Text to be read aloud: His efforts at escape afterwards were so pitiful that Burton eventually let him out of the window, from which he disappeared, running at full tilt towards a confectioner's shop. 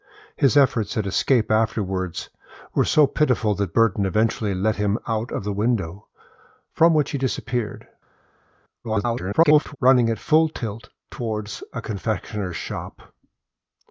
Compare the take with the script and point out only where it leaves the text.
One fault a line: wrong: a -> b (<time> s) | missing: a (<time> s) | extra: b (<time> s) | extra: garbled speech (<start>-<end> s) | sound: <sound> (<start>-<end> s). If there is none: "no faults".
extra: garbled speech (8.8-9.8 s)